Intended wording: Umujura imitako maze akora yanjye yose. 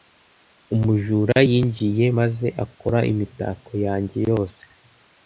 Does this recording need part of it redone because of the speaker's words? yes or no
yes